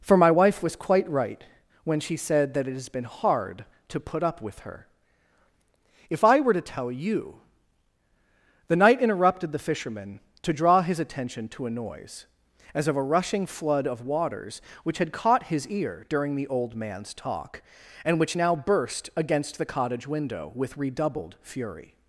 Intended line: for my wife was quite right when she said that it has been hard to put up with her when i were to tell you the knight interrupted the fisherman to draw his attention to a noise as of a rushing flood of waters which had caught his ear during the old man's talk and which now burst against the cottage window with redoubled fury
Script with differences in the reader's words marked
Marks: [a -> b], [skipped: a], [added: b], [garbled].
for my wife was quite right when she said that it has been hard to put up with her [when -> if] i were to tell you the knight interrupted the fisherman to draw his attention to a noise as of a rushing flood of waters which had caught his ear during the old man's talk and which now burst against the cottage window with redoubled fury